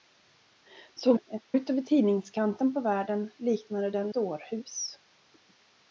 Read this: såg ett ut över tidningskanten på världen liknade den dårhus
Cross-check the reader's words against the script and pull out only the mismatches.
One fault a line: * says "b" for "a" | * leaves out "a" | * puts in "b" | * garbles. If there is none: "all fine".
all fine